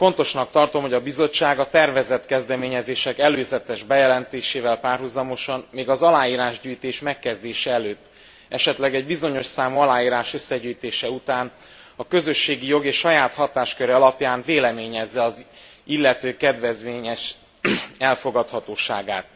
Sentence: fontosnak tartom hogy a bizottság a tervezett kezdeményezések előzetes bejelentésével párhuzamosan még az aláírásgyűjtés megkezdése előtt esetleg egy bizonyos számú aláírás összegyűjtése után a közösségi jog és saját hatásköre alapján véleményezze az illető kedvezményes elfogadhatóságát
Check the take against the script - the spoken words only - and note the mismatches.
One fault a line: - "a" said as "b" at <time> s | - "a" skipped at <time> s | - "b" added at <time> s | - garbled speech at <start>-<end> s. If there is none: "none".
none